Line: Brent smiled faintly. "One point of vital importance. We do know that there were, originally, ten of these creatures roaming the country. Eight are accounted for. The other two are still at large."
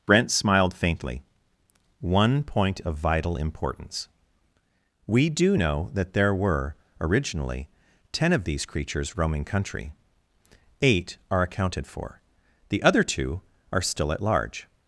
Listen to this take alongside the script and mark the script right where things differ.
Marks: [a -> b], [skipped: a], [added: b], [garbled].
Brent smiled faintly. "One point of vital importance. We do know that there were, originally, ten of these creatures roaming [skipped: the] country. Eight are accounted for. The other two are still at large."